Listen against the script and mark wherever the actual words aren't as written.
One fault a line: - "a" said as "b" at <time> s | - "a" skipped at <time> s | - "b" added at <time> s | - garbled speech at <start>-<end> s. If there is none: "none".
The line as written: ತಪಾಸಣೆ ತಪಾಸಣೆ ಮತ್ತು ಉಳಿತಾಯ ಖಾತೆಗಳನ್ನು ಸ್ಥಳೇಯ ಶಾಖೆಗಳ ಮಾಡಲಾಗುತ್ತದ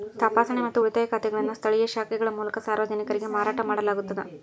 - "ತಪಾಸಣೆ" skipped at 0.6 s
- "ಮೂಲಕ ಸಾರ್ವಜನಿಕರಿಗೆ ಮಾರಾಟ" added at 2.3 s